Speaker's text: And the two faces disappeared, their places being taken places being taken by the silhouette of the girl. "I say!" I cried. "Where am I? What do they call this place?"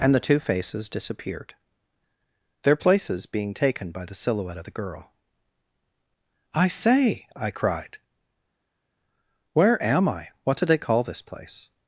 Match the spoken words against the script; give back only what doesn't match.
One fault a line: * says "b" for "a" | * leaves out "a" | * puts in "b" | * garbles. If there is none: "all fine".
* leaves out "places being taken"